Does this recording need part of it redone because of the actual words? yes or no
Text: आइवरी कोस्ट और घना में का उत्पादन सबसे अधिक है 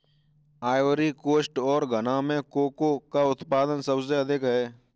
yes